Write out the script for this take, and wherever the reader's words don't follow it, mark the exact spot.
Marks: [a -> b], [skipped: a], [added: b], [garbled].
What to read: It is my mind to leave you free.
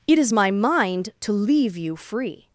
It is my mind to leave you free.